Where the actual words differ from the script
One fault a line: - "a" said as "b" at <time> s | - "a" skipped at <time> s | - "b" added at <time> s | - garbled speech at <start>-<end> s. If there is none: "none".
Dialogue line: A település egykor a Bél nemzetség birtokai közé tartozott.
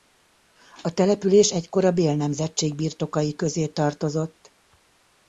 none